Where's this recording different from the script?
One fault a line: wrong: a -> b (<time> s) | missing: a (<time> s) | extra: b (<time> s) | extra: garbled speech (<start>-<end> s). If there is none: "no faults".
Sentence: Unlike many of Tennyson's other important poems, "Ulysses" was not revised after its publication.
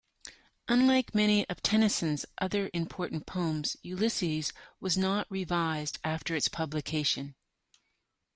no faults